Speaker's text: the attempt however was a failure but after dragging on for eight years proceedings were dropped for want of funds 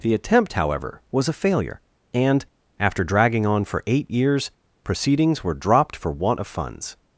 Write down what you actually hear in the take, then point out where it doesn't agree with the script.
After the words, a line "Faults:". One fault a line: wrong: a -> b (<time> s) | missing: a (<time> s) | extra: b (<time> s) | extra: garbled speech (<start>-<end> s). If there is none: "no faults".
the attempt however was a failure and after dragging on for eight years proceedings were dropped for want of funds
Faults:
wrong: but -> and (2.1 s)